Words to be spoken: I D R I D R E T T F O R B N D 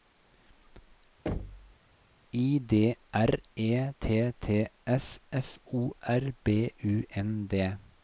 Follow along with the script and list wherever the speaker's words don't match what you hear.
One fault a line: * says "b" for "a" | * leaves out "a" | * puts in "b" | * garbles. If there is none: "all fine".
* leaves out "I D R"
* puts in "S"
* puts in "U"